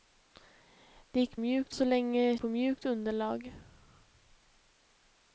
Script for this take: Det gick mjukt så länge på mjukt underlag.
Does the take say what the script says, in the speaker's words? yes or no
yes